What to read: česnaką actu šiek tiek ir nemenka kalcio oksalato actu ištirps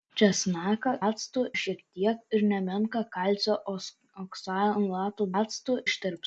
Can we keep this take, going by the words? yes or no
yes